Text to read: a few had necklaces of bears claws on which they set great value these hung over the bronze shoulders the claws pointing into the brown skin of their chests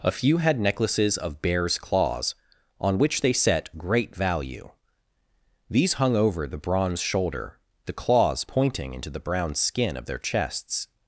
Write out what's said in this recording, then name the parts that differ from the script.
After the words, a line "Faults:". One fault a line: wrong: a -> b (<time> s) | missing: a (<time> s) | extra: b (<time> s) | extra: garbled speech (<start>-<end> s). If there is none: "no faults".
a few had necklaces of bears claws on which they set great value these hung over the bronze shoulder the claws pointing into the brown skin of their chests
Faults:
wrong: shoulders -> shoulder (7.0 s)